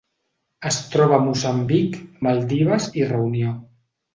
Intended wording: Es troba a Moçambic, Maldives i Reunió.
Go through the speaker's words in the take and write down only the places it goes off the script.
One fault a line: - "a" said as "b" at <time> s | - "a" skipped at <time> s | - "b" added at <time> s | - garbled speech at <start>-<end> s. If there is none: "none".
none